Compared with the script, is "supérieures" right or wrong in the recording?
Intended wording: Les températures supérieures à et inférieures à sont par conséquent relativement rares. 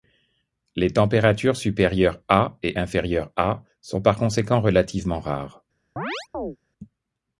right